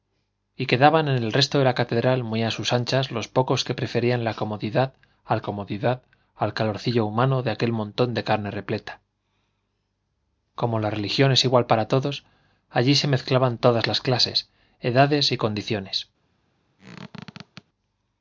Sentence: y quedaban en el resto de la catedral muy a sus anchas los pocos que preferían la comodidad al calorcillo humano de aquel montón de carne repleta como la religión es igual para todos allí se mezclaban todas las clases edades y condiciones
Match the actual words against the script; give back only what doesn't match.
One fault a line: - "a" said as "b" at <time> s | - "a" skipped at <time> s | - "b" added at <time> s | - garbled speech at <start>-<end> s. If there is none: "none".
- "comodidad al" added at 5.4 s